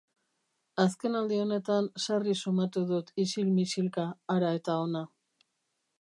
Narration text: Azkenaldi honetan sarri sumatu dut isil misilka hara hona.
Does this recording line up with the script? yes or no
no